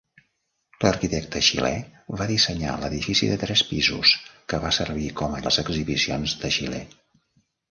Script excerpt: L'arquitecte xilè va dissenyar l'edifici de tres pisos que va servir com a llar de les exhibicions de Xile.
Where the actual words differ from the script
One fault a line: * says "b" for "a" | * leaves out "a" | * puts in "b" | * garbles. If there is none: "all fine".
* leaves out "llar de"